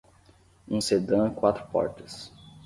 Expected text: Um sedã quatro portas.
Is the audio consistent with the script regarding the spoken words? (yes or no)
yes